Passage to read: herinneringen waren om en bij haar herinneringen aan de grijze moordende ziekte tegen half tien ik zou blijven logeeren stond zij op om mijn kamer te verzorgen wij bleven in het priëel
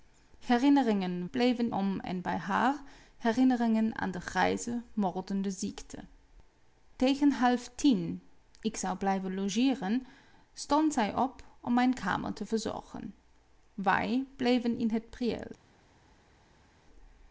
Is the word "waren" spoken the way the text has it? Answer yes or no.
no